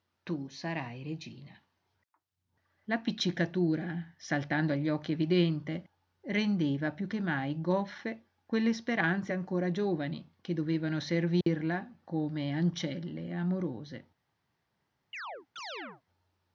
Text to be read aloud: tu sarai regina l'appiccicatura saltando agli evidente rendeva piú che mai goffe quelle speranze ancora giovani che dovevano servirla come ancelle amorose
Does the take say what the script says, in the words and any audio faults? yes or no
no